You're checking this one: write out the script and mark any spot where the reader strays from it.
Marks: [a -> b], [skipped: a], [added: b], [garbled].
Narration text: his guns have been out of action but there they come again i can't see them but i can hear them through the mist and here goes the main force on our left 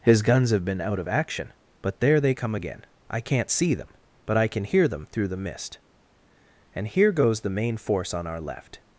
his guns have been out of action but there they come again i can't see them but i can hear them through the mist and here goes the main force on our left